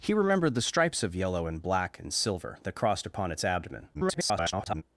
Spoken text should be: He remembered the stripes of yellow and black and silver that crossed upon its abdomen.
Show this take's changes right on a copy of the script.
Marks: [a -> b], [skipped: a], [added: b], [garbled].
He remembered the stripes of yellow and black and silver that crossed upon its abdomen. [garbled]